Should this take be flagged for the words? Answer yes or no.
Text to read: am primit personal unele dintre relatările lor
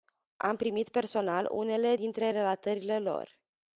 no